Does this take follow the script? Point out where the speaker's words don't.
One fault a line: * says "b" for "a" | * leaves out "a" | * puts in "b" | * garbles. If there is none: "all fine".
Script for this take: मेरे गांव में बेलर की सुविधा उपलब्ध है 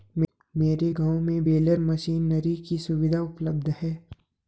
* puts in "मशीनरी"